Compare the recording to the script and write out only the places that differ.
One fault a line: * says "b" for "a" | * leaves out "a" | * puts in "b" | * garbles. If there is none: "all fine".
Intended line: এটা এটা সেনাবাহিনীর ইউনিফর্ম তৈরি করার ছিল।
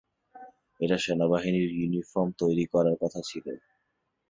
* leaves out "এটা"
* puts in "কথা"